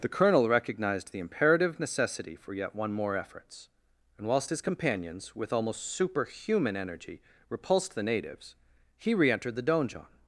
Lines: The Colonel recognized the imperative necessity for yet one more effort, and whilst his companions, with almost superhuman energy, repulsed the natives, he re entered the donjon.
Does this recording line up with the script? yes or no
no